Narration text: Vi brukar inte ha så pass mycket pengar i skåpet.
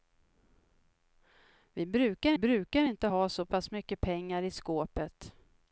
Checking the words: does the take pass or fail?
fail